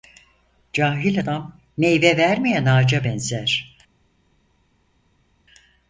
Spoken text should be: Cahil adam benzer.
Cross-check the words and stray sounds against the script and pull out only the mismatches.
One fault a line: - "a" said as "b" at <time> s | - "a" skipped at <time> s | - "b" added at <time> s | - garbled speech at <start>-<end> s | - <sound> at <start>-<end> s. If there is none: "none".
- "meyve vermeyen ağaca" added at 1.8 s